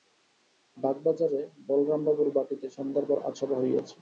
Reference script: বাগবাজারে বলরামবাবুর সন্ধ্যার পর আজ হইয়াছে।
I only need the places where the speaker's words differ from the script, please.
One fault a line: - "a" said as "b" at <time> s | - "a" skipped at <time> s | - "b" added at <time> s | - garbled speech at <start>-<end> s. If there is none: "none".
- "বাটীতে" added at 2.4 s
- "সভা" added at 3.4 s